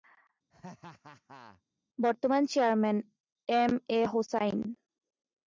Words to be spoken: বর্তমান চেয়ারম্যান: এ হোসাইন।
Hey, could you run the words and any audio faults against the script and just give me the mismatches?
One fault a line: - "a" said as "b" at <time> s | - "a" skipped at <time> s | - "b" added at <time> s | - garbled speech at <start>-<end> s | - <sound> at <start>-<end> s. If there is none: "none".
- laugh at 0.5-1.6 s
- "এম" added at 3.5 s